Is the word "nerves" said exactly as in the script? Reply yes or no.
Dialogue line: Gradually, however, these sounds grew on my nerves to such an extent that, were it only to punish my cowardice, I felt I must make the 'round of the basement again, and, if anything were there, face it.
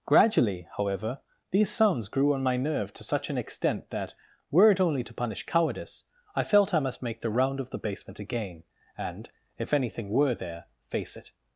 no